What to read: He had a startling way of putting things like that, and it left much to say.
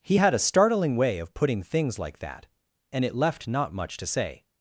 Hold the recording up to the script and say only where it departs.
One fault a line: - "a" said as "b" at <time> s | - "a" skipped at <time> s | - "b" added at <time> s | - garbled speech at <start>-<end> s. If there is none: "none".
- "not" added at 3.5 s